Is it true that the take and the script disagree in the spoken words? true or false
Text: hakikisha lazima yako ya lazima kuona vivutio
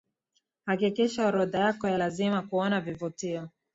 true